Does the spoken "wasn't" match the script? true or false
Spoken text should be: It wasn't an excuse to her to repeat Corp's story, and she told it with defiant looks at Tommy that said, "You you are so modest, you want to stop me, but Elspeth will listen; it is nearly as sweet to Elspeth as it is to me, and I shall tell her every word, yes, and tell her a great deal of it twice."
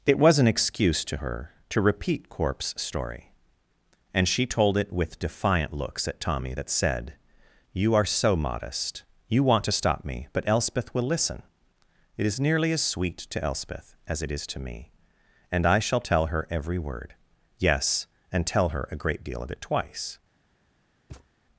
false